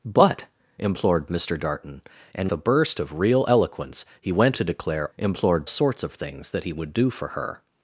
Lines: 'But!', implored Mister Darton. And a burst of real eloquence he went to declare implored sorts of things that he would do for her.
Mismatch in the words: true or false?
false